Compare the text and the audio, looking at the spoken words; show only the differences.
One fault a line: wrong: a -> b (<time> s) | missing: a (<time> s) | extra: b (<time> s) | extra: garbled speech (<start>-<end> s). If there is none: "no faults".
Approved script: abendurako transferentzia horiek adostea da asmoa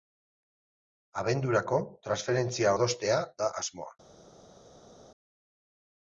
missing: horiek (2.7 s)